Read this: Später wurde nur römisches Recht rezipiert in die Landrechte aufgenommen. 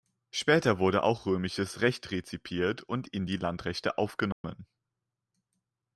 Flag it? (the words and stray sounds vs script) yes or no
yes